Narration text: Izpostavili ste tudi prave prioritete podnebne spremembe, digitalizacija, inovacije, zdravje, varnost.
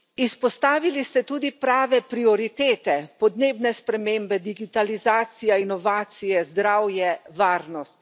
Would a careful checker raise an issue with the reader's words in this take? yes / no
no